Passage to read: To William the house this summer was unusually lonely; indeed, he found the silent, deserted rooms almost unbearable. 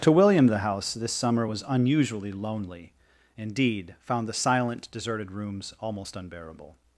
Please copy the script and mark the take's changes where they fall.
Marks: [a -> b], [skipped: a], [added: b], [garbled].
To William the house this summer was unusually lonely; indeed, [skipped: he] found the silent, deserted rooms almost unbearable.